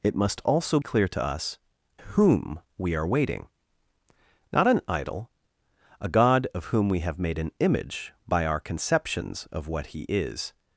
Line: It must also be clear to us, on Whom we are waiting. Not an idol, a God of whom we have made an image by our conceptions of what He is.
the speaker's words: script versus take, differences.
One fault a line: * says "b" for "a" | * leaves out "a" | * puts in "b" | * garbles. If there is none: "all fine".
* leaves out "be"
* leaves out "on"